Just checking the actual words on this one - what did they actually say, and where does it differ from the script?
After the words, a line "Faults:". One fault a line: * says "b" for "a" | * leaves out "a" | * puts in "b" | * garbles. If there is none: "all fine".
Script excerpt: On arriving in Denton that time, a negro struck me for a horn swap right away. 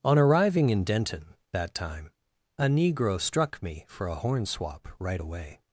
On arriving in Denton that time, a negro struck me for a horn swap right away.
Faults:
all fine